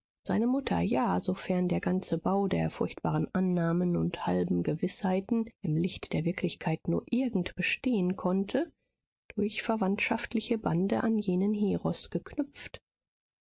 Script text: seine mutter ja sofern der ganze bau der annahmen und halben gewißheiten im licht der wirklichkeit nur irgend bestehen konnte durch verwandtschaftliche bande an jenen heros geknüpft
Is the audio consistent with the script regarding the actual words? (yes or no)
no